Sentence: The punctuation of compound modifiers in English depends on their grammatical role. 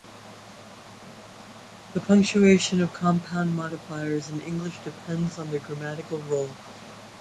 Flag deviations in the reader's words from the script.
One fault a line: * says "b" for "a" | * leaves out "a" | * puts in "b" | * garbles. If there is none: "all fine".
all fine